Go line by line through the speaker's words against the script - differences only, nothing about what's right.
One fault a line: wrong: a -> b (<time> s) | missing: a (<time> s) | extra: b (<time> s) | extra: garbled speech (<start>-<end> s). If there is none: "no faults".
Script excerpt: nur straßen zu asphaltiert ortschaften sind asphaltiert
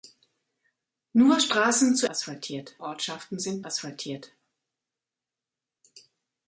no faults